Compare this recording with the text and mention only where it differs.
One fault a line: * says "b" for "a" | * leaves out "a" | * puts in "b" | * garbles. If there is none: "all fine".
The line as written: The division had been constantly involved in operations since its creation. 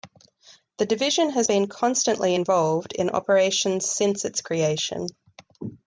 * says "has" for "had"